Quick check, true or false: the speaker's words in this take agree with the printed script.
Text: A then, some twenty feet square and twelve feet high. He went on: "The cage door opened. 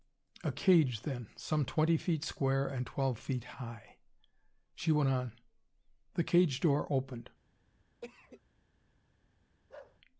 false